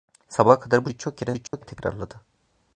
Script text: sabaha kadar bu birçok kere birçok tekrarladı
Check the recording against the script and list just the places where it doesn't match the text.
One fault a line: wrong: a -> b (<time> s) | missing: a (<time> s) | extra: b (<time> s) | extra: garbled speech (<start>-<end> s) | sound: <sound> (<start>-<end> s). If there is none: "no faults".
sound: dropout (1.5-1.5 s)